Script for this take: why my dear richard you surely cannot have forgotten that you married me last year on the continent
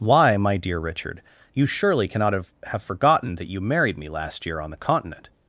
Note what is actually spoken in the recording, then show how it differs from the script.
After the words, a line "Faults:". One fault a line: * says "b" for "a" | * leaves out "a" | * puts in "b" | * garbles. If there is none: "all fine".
why my dear richard you surely cannot have have forgotten that you married me last year on the continent
Faults:
* puts in "have"